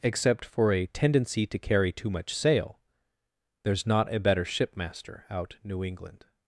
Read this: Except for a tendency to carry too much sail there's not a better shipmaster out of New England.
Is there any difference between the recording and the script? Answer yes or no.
yes